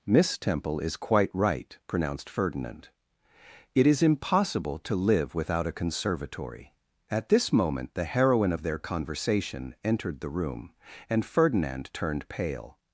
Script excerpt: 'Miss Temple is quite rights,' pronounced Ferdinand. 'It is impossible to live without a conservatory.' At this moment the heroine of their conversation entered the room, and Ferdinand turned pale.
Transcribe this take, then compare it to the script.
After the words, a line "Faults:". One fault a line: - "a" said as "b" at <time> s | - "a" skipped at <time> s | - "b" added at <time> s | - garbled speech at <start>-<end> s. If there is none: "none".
'Miss Temple is quite right,' pronounced Ferdinand. 'It is impossible to live without a conservatory.' At this moment the heroine of their conversation entered the room, and Ferdinand turned pale.
Faults:
- "rights" said as "right" at 1.3 s